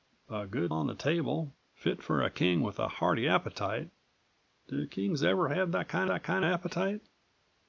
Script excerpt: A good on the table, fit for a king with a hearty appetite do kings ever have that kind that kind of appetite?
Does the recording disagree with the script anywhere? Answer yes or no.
no